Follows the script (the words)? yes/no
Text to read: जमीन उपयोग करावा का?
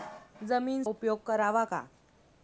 yes